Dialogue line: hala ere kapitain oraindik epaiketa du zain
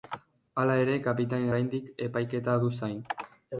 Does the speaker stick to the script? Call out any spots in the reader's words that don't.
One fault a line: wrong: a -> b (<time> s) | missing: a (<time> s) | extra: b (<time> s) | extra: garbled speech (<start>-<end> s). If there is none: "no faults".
no faults